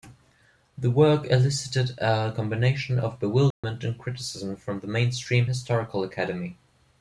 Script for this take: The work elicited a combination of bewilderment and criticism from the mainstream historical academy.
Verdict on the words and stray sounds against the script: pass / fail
fail